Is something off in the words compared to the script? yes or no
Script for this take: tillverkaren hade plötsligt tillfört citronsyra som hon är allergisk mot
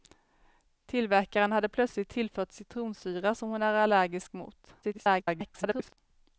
yes